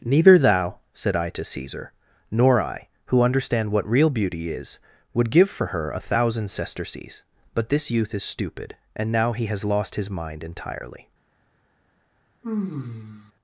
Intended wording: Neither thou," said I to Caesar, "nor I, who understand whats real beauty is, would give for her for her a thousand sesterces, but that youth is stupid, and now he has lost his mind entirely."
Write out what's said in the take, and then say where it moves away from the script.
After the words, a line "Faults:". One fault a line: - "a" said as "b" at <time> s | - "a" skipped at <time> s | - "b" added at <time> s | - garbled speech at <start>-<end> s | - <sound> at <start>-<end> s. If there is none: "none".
Neither thou," said I to Caesar, "nor I, who understand what real beauty is, would give for her a thousand sesterces, but this youth is stupid, and now he has lost his mind entirely."
Faults:
- "whats" said as "what" at 3.7 s
- "for her" skipped at 5.9 s
- "that" said as "this" at 7.7 s
- sigh at 12.4-13.3 s